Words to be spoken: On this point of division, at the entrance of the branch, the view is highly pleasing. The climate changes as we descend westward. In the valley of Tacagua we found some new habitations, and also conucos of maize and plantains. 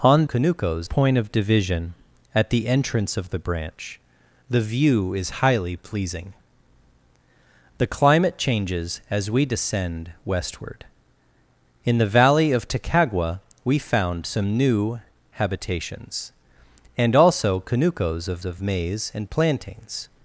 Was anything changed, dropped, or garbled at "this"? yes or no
yes